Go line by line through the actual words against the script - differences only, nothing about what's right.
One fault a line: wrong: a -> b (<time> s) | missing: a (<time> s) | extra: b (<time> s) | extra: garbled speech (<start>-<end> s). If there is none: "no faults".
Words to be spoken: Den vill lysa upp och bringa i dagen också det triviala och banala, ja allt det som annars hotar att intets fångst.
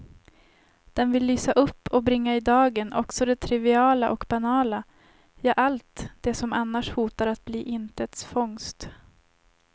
extra: bli (7.5 s)